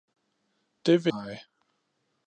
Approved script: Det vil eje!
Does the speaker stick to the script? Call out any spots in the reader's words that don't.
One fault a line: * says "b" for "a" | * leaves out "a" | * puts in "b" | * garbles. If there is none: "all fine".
all fine